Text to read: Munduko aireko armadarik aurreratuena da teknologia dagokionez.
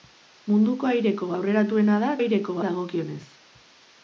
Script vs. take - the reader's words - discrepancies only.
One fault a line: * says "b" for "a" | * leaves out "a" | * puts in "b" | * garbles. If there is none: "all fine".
* leaves out "armadarik"
* says "aireko" for "teknologia"